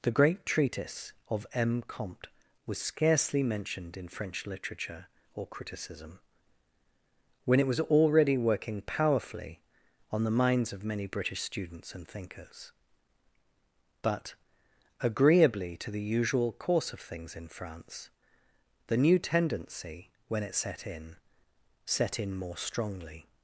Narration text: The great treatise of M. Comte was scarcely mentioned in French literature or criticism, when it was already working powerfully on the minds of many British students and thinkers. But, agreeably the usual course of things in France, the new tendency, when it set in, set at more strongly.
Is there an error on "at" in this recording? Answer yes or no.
yes